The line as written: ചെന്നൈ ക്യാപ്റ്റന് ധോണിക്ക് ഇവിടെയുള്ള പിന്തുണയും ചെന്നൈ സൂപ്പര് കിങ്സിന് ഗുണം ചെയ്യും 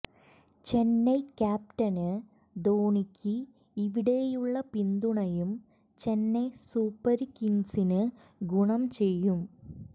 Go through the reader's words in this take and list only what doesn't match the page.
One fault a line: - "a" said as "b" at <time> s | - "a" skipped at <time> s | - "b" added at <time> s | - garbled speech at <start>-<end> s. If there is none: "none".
none